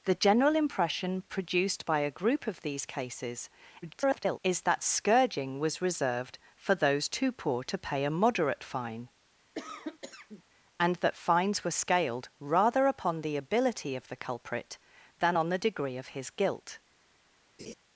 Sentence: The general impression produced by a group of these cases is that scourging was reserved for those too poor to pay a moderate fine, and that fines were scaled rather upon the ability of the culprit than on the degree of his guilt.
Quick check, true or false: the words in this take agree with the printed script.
false